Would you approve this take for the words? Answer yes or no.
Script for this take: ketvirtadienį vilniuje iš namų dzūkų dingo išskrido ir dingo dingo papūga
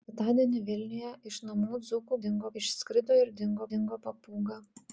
yes